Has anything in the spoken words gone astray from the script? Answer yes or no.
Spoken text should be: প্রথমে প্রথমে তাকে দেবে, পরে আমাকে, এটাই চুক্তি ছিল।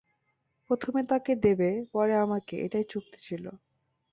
yes